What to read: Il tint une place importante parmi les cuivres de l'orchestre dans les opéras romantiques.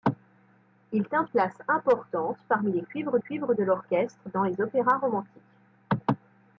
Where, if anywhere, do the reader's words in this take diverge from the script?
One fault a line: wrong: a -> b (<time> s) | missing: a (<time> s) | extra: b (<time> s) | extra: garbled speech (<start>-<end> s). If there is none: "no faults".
missing: une (1.3 s)
extra: cuivres (3.2 s)